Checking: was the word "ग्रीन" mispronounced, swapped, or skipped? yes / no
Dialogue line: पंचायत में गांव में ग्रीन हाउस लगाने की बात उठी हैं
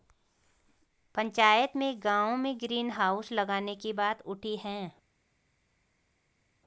no